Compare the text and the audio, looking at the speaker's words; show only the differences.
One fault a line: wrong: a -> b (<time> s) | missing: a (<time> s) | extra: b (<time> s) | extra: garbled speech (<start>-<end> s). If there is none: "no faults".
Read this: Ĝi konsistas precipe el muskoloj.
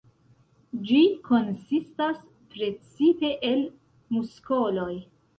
no faults